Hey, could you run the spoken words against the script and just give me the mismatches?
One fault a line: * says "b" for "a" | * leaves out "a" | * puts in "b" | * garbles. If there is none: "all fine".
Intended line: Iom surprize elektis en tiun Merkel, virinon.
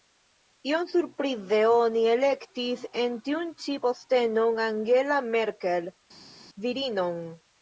* puts in "oni"
* puts in "ĉi postenon Angela"